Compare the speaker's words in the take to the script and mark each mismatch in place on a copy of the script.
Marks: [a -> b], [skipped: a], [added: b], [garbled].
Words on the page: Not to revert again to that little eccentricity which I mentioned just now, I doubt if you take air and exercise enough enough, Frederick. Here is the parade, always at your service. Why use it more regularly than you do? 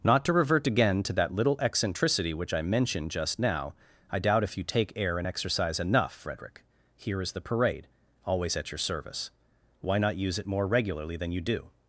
Not to revert again to that little eccentricity which I mentioned just now, I doubt if you take air and exercise enough [skipped: enough,] Frederick. Here is the parade, always at your service. Why [added: not] use it more regularly than you do?